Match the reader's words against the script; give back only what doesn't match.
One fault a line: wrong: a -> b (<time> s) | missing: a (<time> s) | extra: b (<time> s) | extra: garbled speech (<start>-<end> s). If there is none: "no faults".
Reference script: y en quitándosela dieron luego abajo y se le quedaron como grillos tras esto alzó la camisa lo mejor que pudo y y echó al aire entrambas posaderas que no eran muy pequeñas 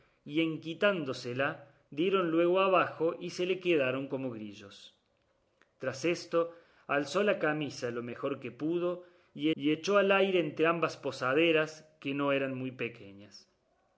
no faults